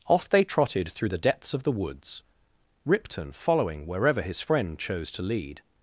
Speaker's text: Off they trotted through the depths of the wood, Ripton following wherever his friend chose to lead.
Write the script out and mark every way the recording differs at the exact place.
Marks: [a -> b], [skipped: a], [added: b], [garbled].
Off they trotted through the depths of the [wood, -> woods] Ripton following wherever his friend chose to lead.